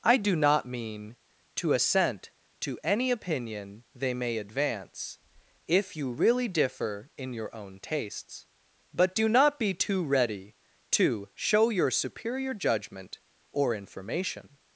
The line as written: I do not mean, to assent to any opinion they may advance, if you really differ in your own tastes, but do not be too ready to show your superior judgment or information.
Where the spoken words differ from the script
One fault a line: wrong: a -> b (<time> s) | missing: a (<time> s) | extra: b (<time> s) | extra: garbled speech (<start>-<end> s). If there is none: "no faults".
no faults